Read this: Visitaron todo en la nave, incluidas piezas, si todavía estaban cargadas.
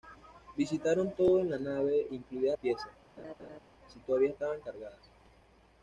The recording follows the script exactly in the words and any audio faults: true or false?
false